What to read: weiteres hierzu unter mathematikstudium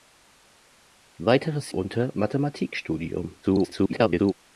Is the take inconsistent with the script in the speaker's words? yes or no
yes